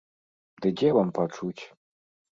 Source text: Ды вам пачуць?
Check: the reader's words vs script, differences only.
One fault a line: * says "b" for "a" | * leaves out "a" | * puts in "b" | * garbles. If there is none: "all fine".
* puts in "дзе"